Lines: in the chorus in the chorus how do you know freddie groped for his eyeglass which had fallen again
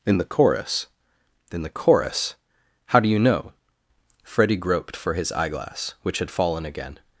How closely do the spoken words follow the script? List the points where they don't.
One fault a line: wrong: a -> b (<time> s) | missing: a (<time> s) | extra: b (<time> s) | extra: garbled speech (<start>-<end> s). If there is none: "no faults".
no faults